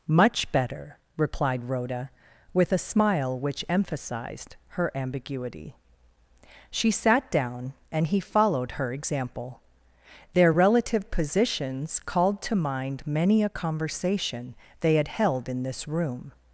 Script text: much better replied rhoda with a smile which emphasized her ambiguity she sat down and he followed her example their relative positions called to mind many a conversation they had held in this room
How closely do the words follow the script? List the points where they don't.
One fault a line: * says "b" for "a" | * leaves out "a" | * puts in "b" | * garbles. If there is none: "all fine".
all fine